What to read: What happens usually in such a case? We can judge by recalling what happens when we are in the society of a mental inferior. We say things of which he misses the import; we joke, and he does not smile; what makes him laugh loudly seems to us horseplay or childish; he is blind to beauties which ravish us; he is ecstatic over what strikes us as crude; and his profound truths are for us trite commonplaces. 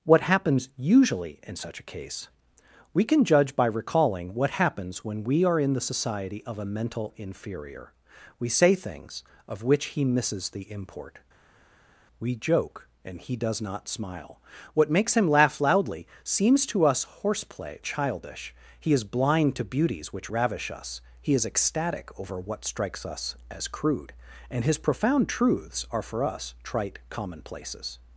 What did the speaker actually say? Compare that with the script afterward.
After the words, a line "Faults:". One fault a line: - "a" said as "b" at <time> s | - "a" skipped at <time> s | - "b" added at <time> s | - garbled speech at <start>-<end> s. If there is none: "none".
What happens usually in such a case? We can judge by recalling what happens when we are in the society of a mental inferior. We say things of which he misses the import; we joke, and he does not smile; what makes him laugh loudly seems to us horseplay childish; he is blind to beauties which ravish us; he is ecstatic over what strikes us as crude; and his profound truths are for us trite commonplaces.
Faults:
- "or" skipped at 17.8 s